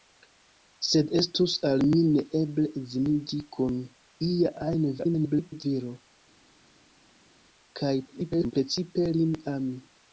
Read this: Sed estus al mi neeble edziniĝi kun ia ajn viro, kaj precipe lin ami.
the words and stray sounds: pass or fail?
fail